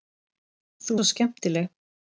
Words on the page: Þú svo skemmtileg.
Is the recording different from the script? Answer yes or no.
no